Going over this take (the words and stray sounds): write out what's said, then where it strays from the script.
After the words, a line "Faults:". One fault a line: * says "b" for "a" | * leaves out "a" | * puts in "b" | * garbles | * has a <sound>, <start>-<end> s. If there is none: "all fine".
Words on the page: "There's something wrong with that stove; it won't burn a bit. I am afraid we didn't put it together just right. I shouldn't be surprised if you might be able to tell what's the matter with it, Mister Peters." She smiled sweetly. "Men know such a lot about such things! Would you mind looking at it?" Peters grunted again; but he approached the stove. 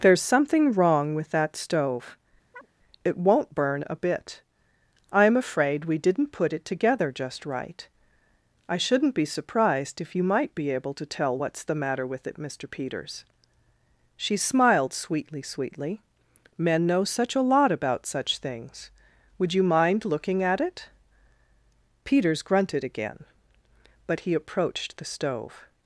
"There's something wrong with that stove; it won't burn a bit. I am afraid we didn't put it together just right. I shouldn't be surprised if you might be able to tell what's the matter with it, Mister Peters." She smiled sweetly sweetly. "Men know such a lot about such things! Would you mind looking at it?" Peters grunted again; but he approached the stove.
Faults:
* has a chirp, 2.5-2.7 s
* puts in "sweetly"